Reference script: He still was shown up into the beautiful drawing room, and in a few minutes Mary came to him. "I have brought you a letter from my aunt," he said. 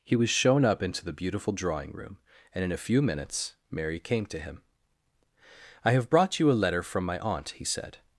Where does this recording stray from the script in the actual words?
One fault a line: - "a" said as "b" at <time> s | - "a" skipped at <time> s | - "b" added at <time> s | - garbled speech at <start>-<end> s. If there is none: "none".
- "still" skipped at 0.1 s